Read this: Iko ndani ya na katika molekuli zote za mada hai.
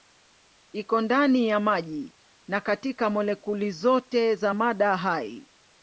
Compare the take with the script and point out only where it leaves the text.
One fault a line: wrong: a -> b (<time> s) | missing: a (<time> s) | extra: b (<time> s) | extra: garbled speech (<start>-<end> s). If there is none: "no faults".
extra: maji (1.6 s)